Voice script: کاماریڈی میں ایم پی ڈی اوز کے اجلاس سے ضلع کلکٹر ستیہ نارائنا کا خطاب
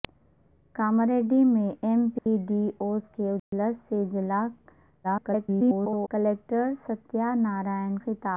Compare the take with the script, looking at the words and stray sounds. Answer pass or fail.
fail